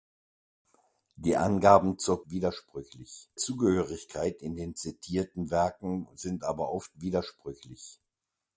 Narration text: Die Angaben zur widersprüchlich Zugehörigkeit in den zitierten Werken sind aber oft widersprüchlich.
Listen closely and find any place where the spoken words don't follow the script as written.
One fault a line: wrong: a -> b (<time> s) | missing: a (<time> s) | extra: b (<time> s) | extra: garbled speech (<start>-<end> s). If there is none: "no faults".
no faults